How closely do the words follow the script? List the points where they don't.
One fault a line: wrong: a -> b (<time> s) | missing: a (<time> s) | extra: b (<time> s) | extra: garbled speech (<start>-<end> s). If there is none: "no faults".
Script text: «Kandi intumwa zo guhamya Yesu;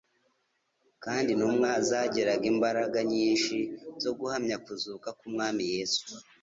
extra: zagiraga imbaraga nyinshi (1.9 s)
extra: kuzuka k'Umwami (4.6 s)